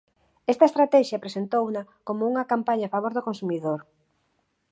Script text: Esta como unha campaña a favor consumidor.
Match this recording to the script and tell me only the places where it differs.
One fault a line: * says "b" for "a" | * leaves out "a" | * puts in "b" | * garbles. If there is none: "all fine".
* puts in "estratexia presentouna"
* puts in "do"